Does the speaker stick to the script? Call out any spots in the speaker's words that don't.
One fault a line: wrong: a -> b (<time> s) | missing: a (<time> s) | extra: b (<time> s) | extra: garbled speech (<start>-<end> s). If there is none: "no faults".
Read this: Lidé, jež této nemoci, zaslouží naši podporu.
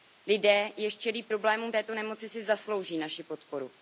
extra: čelí problémům (1.0 s)
extra: si (2.3 s)